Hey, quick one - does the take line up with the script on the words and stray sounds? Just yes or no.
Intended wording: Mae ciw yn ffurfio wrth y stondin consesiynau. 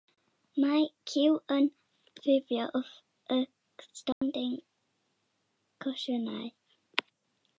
no